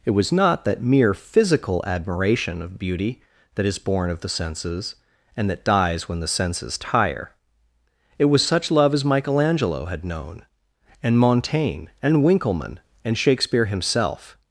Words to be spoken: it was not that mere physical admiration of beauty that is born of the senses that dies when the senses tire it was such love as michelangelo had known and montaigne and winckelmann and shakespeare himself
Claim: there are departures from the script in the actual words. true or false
true